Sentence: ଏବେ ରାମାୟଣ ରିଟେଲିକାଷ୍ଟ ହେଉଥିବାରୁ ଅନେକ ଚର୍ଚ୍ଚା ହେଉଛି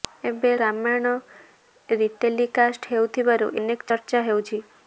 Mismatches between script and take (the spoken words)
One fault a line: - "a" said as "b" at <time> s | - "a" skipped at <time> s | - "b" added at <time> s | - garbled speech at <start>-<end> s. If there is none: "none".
none